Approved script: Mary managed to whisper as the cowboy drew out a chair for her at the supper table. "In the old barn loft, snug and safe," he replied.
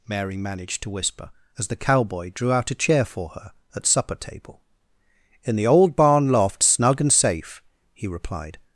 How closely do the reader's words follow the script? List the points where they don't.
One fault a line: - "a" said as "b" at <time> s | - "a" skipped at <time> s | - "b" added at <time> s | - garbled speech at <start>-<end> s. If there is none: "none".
- "the" skipped at 3.9 s